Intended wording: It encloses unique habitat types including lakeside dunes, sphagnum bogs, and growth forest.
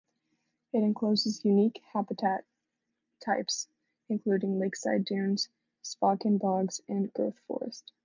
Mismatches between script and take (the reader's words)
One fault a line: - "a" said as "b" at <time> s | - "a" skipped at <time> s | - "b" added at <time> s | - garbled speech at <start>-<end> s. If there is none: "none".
none